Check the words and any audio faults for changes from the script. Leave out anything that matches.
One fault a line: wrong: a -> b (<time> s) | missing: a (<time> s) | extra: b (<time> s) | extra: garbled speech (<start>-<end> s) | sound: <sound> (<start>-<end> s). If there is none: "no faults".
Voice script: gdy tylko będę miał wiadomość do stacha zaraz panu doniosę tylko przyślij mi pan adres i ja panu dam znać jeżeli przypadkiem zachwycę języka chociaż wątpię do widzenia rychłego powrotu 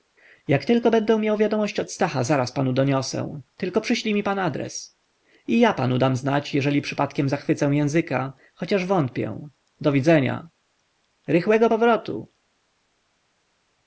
wrong: gdy -> jak (0.5 s)
wrong: do -> od (1.8 s)